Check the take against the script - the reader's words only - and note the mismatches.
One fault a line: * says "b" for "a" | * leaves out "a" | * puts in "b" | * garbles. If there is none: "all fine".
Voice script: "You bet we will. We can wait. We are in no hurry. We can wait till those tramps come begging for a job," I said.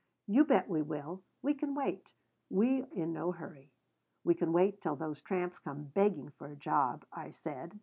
* leaves out "are"